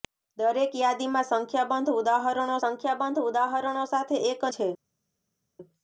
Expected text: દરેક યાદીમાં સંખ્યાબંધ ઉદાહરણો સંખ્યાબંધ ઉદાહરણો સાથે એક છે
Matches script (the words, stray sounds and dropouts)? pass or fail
pass